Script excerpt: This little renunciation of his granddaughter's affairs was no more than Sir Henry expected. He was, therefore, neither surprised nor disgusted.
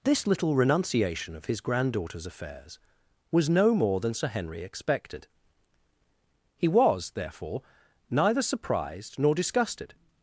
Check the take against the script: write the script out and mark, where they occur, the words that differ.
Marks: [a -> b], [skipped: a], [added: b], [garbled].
This little renunciation of his granddaughter's affairs was no more than Sir Henry expected. He was, therefore, neither surprised nor disgusted.